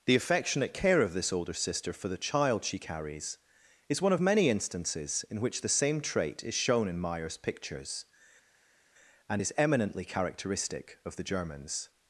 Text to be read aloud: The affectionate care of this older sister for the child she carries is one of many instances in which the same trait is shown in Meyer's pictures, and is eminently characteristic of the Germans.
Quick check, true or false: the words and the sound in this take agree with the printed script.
true